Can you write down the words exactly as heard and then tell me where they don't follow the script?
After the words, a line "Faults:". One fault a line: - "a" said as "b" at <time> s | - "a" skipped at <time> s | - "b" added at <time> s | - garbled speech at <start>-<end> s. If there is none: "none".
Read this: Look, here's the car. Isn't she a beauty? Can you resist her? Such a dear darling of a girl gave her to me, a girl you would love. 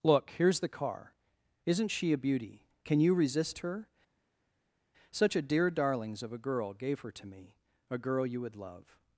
Look, here's the car. Isn't she a beauty? Can you resist her? Such a dear darlings of a girl gave her to me, a girl you would love.
Faults:
- "darling" said as "darlings" at 5.7 s